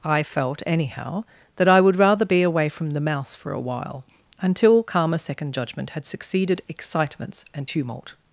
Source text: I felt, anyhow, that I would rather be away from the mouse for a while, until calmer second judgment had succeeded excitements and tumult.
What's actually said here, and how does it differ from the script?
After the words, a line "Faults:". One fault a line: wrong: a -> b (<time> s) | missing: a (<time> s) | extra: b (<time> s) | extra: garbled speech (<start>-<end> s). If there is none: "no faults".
I felt, anyhow, that I would rather be away from the mouse for a while, until calmer second judgment had succeeded excitements and tumult.
Faults:
no faults